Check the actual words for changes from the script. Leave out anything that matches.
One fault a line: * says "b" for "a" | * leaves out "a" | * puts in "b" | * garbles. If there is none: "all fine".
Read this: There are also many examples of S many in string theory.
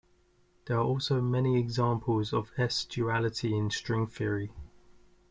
* says "duality" for "many"